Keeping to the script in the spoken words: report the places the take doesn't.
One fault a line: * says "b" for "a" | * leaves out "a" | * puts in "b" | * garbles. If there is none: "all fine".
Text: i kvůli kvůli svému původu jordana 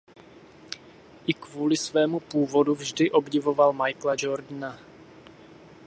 * leaves out "kvůli"
* puts in "vždy obdivoval michaela"